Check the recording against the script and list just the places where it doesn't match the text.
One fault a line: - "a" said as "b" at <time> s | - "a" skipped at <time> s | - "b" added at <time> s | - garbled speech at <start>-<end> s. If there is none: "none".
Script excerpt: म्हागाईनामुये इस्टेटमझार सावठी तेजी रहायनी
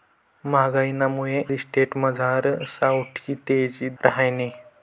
none